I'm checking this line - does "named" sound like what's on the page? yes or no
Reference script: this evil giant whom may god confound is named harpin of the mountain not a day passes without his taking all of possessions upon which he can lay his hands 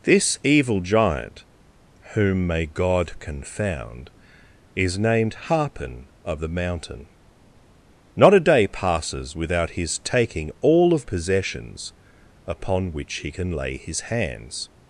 yes